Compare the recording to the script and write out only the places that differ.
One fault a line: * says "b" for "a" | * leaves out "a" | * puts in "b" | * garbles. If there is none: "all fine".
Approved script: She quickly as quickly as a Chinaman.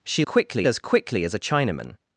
all fine